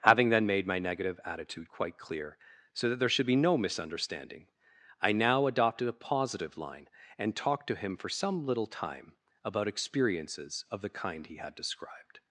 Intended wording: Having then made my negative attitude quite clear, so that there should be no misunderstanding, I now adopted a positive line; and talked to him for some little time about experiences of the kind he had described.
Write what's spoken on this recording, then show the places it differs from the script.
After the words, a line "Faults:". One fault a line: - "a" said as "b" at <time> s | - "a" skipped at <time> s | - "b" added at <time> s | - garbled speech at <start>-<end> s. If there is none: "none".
Having then made my negative attitude quite clear, so that there should be no misunderstanding, I now adopted a positive line; and talked to him for some little time about experiences of the kind he had described.
Faults:
none